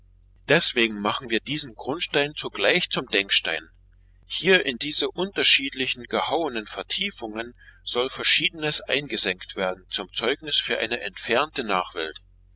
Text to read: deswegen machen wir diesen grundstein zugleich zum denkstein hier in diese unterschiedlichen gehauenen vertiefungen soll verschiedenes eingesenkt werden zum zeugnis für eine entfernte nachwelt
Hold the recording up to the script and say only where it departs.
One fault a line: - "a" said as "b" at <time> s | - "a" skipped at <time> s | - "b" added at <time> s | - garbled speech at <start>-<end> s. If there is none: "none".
none